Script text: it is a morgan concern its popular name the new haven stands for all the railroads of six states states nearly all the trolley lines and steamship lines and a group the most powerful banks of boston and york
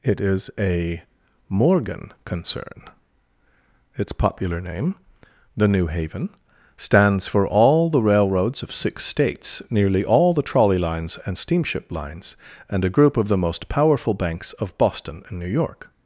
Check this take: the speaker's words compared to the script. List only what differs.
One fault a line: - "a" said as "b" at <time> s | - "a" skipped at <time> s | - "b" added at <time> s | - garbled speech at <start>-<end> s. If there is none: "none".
- "states" skipped at 9.6 s
- "of" added at 13.2 s
- "new" added at 15.4 s